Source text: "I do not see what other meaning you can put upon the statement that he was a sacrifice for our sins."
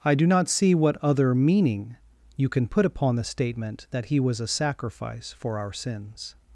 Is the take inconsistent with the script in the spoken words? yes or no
no